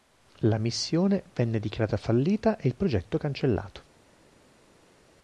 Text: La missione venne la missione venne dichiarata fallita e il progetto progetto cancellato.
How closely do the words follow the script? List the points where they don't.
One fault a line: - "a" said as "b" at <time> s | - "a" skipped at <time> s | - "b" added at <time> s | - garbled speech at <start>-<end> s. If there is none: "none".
- "la missione venne" skipped at 1.6 s
- "progetto" skipped at 3.2 s